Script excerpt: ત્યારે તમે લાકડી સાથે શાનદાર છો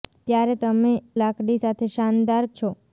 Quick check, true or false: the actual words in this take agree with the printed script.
true